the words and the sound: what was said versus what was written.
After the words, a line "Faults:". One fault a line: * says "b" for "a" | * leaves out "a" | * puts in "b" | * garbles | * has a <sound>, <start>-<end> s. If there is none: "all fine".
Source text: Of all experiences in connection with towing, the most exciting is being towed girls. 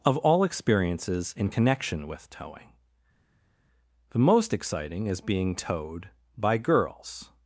Of all experiences in connection with towing, the most exciting is being towed by girls.
Faults:
* puts in "by"